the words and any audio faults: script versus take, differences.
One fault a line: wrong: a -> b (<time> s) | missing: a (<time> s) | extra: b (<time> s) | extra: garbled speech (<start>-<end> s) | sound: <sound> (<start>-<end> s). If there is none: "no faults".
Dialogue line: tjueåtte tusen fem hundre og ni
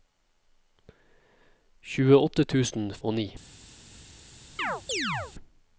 missing: fem hundre (2.9 s)
sound: chirp (4.6-5.3 s)